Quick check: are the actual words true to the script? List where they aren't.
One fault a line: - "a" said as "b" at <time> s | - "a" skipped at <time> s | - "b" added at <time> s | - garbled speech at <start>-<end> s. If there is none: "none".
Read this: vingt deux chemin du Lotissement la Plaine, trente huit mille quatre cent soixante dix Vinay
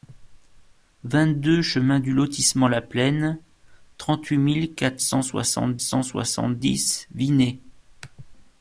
- "cent soixante" added at 5.8 s